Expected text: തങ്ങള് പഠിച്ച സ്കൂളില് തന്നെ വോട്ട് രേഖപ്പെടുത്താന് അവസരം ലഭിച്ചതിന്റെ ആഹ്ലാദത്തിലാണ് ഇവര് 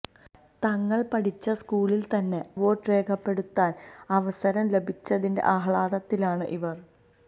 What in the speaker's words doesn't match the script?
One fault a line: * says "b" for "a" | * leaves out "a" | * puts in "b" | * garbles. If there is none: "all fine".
all fine